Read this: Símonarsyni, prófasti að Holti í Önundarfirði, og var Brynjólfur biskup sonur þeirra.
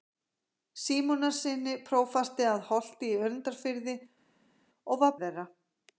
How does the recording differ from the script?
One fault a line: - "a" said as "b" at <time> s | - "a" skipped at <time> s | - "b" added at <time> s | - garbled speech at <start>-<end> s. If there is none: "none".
- "Brynjólfur biskup sonur" skipped at 5.2 s